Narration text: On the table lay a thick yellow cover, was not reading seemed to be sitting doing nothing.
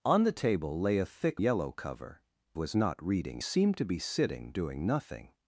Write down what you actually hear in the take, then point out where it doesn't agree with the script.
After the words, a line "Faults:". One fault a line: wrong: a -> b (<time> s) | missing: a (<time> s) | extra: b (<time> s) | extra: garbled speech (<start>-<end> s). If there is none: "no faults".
On the table lay a thick yellow cover, was not reading seemed to be sitting doing nothing.
Faults:
no faults